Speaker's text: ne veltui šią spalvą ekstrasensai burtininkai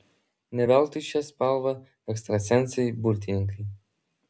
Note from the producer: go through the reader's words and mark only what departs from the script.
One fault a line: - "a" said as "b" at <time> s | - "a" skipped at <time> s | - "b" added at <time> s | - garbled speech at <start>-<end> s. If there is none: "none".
none